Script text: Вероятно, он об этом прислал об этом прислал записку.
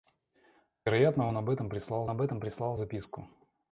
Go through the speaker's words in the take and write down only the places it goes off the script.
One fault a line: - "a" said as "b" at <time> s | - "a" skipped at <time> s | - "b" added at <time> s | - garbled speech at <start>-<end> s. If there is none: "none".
none